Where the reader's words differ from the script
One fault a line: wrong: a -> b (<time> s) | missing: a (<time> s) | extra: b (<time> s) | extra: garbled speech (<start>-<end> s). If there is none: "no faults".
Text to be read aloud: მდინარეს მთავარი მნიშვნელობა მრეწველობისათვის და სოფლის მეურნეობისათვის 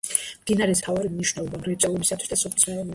no faults